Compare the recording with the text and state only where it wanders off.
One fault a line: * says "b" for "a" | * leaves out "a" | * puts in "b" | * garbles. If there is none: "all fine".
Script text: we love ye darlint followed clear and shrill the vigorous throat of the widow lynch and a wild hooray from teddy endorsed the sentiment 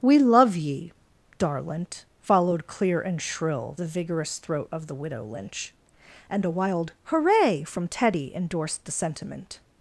all fine